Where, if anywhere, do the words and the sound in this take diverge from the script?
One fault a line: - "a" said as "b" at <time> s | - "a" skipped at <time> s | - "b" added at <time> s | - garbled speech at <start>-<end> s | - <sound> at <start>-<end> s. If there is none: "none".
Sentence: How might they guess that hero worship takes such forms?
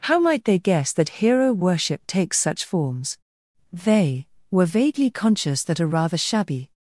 - "They were vaguely conscious that a rather shabby" added at 3.7 s